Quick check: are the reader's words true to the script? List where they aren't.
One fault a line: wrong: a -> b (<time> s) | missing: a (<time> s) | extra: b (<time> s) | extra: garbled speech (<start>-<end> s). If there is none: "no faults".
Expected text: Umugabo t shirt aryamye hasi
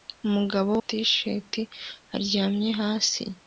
no faults